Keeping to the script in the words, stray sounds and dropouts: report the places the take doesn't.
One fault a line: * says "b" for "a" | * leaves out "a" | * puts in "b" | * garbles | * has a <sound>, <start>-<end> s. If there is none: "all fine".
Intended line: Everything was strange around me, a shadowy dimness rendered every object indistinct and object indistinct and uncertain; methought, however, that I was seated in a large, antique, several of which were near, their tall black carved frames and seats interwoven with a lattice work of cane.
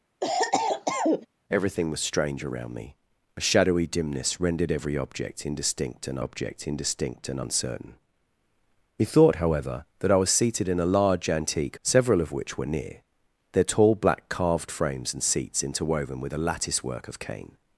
* has a cough, 0.2-1.3 s